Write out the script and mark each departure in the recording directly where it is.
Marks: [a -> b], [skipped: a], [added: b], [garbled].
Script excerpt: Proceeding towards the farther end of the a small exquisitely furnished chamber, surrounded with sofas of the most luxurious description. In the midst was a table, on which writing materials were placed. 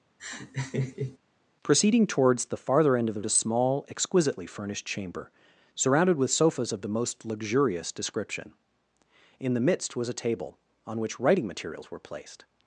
Proceeding towards the farther end of the a small exquisitely furnished chamber, surrounded with sofas of the most luxurious description. In the midst was a table, on which writing materials were placed.